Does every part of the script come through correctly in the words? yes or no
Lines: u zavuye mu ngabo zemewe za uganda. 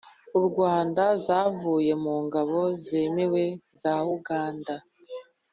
no